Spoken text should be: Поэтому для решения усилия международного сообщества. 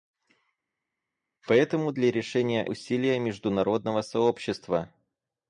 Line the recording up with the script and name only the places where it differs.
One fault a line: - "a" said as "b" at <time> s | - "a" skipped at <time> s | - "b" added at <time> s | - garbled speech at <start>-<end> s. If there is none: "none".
none